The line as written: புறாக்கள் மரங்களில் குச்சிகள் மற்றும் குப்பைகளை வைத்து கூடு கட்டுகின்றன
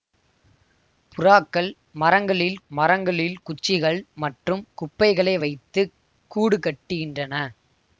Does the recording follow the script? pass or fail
fail